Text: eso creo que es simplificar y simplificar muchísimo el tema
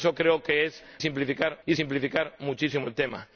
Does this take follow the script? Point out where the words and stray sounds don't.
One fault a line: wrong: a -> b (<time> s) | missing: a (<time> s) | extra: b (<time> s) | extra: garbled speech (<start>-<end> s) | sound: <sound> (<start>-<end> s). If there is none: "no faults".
no faults